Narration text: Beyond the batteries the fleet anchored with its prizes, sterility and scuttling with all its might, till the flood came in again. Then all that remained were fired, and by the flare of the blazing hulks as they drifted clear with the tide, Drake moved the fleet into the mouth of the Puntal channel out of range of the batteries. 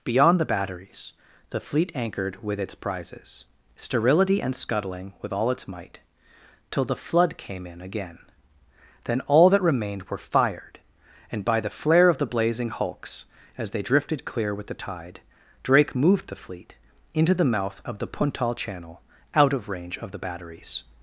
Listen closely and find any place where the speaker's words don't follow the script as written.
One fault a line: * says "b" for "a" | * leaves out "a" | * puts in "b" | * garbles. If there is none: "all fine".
all fine